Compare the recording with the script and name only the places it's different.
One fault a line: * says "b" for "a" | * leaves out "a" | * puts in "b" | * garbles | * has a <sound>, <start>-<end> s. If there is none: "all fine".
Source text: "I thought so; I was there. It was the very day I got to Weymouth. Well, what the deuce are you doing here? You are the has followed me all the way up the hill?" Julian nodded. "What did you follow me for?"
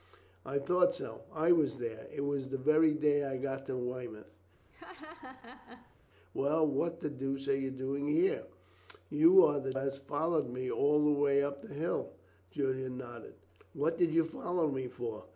* has a laugh, 4.7-6.0 s